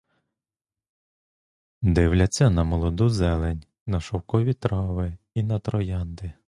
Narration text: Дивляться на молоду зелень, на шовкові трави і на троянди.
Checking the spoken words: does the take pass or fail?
pass